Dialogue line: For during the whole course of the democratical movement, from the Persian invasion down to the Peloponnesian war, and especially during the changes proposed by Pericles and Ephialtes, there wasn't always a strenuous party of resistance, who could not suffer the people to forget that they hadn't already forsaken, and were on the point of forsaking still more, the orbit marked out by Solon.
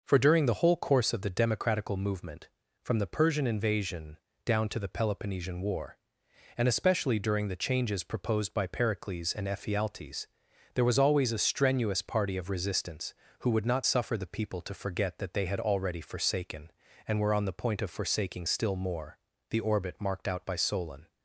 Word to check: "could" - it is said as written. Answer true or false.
false